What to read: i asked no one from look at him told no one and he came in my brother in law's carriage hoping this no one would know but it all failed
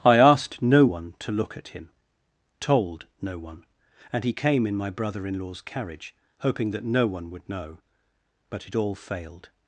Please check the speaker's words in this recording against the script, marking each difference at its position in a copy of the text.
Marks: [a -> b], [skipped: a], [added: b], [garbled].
i asked no one [from -> to] look at him told no one and he came in my brother in law's carriage hoping [this -> that] no one would know but it all failed